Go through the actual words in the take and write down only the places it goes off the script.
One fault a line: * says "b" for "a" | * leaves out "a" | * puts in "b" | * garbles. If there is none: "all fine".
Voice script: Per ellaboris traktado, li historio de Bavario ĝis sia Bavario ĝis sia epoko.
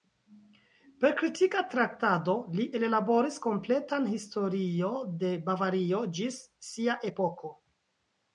* says "kritika" for "ellaboris"
* puts in "ellaboris kompletan"
* leaves out "Bavario ĝis sia"